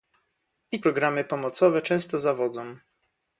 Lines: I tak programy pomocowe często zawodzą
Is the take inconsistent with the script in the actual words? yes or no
yes